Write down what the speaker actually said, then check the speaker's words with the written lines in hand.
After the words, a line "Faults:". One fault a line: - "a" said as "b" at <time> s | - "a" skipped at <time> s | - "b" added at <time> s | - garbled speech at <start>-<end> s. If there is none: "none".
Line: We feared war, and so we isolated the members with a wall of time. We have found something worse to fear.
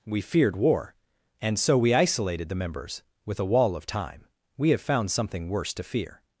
We feared war, and so we isolated the members with a wall of time. We have found something worse to fear.
Faults:
none